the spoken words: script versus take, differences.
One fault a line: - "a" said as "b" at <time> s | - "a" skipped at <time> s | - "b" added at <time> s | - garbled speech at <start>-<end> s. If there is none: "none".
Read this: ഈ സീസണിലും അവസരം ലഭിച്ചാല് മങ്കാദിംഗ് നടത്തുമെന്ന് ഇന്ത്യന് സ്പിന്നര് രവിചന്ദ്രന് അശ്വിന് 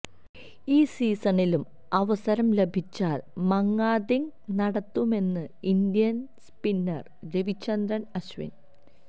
none